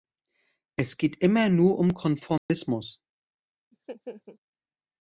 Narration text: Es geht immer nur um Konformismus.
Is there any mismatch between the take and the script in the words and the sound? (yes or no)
yes